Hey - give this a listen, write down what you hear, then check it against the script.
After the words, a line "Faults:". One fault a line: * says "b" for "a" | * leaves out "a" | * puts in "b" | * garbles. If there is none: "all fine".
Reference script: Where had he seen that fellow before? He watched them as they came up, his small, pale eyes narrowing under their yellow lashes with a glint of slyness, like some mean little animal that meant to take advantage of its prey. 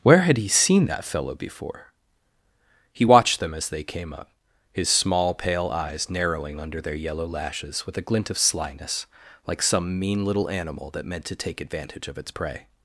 Where had he seen that fellow before? He watched them as they came up, his small, pale eyes narrowing under their yellow lashes with a glint of slyness, like some mean little animal that meant to take advantage of its prey.
Faults:
all fine